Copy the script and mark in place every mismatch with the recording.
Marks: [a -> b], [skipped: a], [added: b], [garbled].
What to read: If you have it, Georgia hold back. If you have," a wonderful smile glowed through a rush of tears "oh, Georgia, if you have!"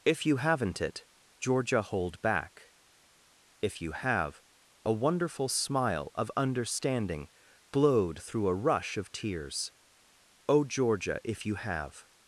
If you [have -> haven't] it, Georgia hold back. If you have," a wonderful smile [added: of understanding] glowed through a rush of tears "oh, Georgia, if you have!"